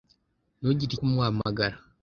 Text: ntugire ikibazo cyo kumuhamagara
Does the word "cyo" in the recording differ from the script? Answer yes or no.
yes